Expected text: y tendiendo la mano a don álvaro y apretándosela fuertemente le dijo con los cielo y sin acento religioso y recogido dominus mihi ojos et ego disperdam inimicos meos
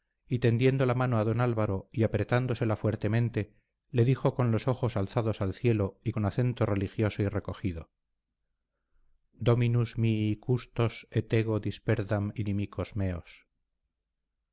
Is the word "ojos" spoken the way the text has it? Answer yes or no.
no